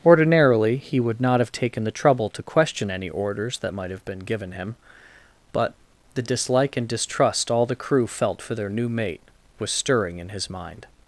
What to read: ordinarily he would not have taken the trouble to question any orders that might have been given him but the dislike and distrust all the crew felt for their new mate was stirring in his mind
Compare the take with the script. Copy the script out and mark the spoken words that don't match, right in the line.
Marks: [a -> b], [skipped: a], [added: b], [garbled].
ordinarily he would not have taken the trouble to question any orders that might have been given him but the dislike and distrust all the crew felt for their new mate was stirring in his mind